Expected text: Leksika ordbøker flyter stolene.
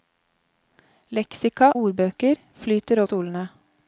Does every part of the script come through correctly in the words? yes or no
yes